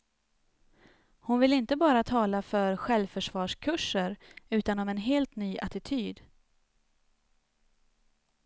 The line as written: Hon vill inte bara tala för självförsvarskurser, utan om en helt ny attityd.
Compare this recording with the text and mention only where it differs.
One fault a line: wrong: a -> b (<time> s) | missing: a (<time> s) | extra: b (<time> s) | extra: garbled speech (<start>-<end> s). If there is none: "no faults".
no faults